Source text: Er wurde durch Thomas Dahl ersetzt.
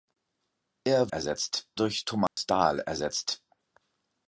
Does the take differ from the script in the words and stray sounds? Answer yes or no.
yes